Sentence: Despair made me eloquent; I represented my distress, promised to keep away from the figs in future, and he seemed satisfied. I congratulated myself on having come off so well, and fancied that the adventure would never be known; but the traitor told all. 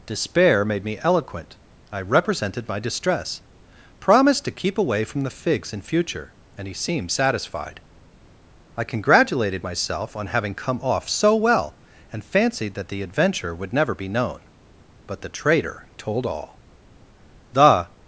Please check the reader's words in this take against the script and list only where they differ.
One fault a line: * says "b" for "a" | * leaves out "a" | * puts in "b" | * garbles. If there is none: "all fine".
* puts in "The"